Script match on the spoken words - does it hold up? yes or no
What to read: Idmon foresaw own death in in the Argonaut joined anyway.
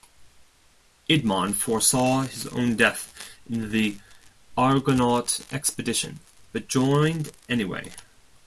no